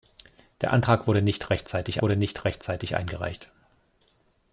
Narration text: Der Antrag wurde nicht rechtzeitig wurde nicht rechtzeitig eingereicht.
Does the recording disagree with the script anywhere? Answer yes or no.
no